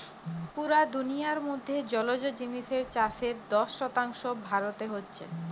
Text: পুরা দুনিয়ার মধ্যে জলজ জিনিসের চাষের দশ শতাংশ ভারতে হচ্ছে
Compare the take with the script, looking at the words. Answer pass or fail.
pass